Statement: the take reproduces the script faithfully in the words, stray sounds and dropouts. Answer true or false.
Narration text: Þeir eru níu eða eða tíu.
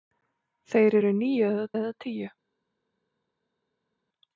true